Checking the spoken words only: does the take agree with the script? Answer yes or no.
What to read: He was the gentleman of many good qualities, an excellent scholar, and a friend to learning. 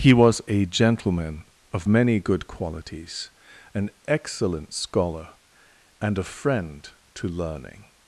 no